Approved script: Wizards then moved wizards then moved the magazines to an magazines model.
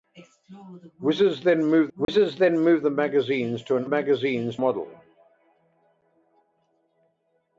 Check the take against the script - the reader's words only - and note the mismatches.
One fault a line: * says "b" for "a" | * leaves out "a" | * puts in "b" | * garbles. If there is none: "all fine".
all fine